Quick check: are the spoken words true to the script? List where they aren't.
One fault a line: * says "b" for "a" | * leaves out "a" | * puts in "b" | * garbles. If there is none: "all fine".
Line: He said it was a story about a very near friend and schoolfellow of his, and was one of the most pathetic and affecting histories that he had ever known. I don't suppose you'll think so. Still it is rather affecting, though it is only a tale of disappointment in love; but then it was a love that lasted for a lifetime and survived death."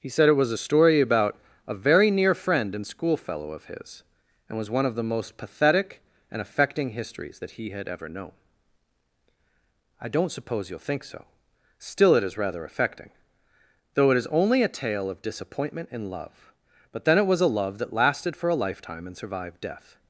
all fine